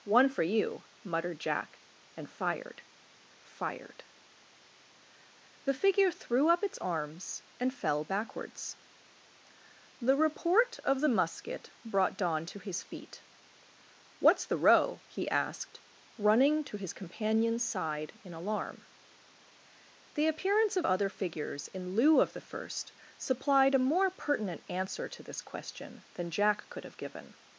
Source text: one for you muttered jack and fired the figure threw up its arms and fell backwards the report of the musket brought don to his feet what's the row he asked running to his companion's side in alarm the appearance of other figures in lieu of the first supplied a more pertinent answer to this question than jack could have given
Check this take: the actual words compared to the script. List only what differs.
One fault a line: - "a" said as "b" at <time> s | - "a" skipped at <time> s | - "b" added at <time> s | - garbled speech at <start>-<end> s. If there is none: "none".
- "fired" added at 3.4 s